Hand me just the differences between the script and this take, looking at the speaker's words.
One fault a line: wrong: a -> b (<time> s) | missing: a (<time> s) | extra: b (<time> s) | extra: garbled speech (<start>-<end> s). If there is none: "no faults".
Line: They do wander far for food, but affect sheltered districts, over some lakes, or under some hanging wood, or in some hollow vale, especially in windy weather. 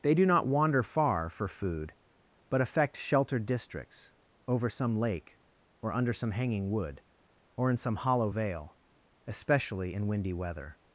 extra: not (0.2 s)
wrong: lakes -> lake (5.0 s)